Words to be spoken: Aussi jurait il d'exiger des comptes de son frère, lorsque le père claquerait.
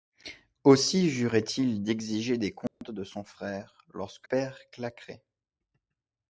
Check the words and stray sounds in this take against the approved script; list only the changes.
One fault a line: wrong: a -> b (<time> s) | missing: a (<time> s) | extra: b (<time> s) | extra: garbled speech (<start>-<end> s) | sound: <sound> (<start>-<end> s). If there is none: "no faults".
sound: dropout (2.7-2.8 s)
missing: le (4.3 s)